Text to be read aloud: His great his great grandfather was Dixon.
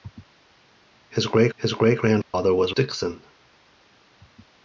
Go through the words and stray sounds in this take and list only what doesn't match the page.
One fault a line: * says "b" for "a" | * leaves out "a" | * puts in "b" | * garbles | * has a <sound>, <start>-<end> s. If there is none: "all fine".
* has a dropout, 2.2-2.3 s